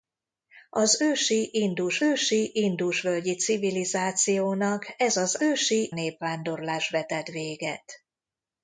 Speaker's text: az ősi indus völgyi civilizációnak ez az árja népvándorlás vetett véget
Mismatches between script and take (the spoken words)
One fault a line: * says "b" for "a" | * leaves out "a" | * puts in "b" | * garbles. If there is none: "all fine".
* puts in "ősi indus"
* says "ősi" for "árja"